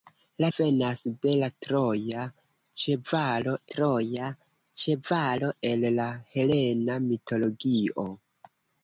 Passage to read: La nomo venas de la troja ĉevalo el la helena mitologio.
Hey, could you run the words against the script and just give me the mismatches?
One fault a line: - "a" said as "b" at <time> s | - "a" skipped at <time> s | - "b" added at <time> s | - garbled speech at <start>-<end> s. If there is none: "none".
- "nomo" skipped at 0.5 s
- "troja ĉevalo" added at 3.7 s